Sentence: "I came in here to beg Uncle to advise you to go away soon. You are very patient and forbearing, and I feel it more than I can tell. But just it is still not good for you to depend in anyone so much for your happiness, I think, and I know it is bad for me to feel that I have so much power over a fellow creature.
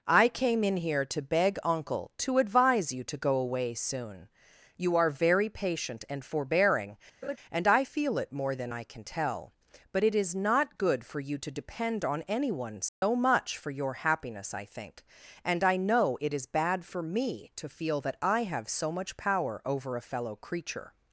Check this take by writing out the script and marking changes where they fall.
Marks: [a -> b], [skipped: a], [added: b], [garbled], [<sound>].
"I came in here to beg Uncle to advise you to go away soon. You are very patient and forbearing, [laugh] and I feel it more than I can tell. But [skipped: just] it is [skipped: still] not good for you to depend [in -> on] anyone so [dropout] much for your happiness, I think, and I know it is bad for me to feel that I have so much power over a fellow creature.